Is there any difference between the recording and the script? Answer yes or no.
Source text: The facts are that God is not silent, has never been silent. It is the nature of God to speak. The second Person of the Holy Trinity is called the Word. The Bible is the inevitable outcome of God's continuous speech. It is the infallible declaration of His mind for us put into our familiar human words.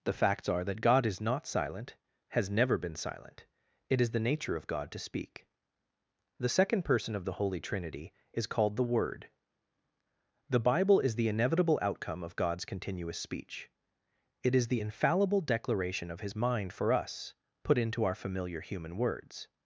no